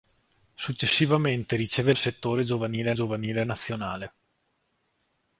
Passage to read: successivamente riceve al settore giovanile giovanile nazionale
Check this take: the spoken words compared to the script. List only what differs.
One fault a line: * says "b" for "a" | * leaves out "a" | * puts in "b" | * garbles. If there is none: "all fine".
all fine